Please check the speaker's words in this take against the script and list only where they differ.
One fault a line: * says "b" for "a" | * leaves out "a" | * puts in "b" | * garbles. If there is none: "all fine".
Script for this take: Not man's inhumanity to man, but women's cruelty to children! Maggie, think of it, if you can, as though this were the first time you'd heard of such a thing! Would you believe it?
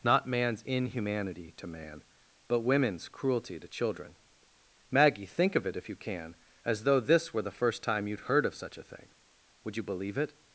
all fine